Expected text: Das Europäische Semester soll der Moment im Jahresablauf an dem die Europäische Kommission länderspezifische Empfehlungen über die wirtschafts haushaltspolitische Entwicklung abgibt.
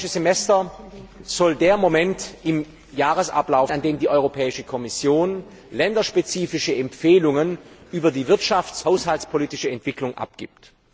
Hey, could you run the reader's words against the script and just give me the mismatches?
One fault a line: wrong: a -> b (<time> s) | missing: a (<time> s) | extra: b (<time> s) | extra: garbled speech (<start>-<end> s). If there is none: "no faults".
no faults